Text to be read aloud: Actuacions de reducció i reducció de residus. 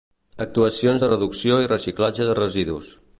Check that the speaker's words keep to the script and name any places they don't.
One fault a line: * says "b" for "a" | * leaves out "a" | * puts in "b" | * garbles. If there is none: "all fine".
* says "reciclatge" for "reducció"